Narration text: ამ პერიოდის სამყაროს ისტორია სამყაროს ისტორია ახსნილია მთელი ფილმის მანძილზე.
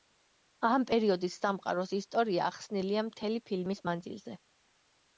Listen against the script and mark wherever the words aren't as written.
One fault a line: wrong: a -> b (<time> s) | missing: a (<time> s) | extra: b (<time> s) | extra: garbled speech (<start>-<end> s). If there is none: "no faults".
missing: სამყაროს ისტორია (2.5 s)